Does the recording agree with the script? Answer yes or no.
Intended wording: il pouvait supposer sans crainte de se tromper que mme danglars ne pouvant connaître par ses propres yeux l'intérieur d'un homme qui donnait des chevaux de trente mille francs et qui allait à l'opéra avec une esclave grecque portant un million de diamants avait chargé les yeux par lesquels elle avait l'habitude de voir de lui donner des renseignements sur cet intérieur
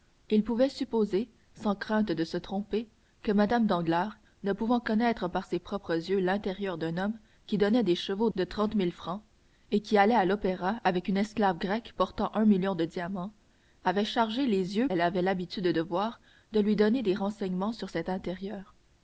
no